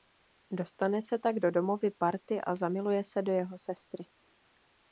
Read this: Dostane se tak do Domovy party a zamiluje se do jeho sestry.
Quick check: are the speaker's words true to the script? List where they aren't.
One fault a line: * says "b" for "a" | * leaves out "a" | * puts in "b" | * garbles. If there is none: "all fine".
all fine